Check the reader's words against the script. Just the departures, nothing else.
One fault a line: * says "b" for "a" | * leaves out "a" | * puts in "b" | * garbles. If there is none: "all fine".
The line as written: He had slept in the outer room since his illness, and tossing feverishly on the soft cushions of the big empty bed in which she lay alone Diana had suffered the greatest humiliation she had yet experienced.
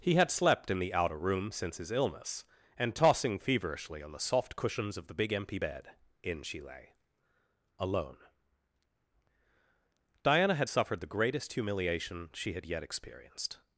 * leaves out "which"